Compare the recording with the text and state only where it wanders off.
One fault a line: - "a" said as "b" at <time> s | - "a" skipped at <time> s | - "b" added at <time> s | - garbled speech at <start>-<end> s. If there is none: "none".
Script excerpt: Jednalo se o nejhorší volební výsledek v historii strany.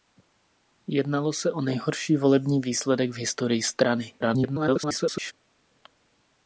- garbled speech at 4.2-5.3 s